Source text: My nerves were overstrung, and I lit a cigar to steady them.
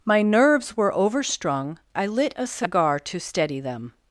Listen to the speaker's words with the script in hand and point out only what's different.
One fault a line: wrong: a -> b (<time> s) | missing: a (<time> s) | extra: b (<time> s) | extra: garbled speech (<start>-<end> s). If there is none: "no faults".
missing: and (1.8 s)